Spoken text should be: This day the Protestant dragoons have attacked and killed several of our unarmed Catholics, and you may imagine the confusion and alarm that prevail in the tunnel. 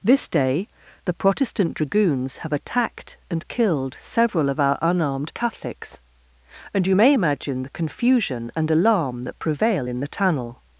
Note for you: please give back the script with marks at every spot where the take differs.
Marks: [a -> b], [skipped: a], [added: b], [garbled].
This day the Protestant dragoons have attacked and killed several of our unarmed Catholics, and you may imagine the confusion and alarm that prevail in the tunnel.